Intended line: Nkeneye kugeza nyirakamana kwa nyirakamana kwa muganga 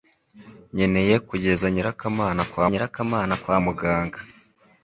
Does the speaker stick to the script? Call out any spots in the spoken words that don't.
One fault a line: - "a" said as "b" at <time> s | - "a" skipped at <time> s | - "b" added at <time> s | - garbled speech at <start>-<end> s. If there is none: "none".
none